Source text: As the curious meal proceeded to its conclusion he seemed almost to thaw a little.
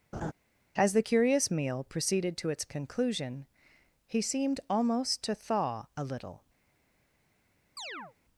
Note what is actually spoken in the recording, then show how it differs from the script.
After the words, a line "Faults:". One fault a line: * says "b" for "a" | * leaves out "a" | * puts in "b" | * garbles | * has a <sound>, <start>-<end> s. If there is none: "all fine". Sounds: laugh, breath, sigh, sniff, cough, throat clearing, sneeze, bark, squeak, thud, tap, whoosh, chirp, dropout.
As the curious meal proceeded to its conclusion he seemed almost to thaw a little.
Faults:
* has a laugh, 0.1-0.3 s
* has a chirp, 7.8-8.1 s